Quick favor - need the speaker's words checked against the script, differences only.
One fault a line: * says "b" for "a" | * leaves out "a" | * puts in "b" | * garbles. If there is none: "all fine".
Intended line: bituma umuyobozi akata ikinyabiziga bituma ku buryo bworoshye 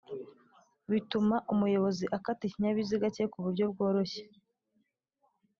* says "cye" for "bituma"